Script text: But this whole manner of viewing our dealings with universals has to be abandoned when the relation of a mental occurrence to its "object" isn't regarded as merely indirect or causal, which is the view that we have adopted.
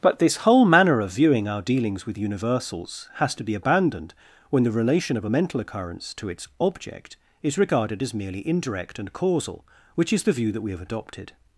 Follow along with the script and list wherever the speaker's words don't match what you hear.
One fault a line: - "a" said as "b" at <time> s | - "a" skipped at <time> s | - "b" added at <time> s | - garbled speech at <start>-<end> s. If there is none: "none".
- "isn't" said as "is" at 7.4 s
- "or" said as "and" at 9.0 s